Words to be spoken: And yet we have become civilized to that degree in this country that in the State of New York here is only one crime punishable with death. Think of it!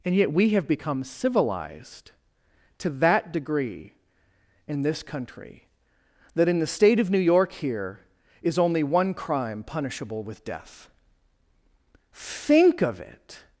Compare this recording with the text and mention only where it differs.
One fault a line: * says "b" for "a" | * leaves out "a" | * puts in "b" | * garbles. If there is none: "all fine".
all fine